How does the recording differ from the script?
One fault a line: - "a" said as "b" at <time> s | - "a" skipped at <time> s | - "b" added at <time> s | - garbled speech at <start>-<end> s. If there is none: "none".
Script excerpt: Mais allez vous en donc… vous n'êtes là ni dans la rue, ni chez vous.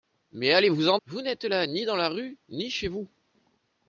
- "donc" skipped at 1.0 s